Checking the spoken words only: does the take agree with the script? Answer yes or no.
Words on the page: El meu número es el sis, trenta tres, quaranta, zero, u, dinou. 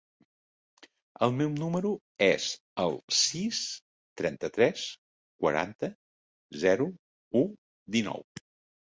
yes